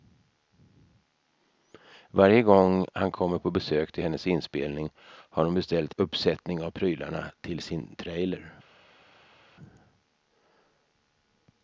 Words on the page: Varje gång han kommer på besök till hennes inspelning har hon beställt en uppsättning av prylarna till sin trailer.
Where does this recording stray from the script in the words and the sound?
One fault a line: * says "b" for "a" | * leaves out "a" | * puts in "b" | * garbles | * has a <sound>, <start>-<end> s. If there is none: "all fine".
* leaves out "en"